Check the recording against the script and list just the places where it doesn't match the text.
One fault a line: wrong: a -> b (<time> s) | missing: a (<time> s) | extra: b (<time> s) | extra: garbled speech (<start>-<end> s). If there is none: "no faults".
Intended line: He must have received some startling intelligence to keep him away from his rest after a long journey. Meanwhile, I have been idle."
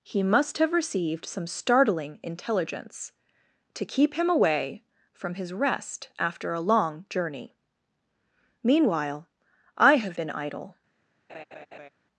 no faults